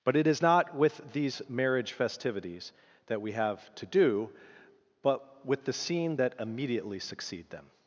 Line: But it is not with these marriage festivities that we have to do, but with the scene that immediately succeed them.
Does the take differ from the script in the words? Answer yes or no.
no